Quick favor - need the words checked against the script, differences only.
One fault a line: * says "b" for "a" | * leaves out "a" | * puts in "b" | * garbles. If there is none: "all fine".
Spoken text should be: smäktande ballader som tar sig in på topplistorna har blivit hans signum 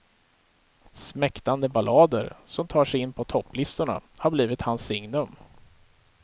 all fine